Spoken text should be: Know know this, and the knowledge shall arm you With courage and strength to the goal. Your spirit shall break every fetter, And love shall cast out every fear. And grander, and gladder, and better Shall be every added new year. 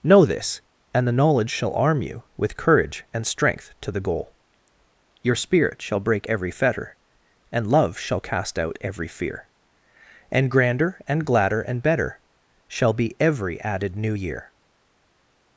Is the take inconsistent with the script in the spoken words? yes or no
yes